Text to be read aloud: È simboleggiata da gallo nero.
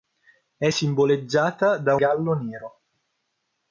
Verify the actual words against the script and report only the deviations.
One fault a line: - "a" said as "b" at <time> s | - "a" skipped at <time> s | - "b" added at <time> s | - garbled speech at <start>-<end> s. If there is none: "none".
none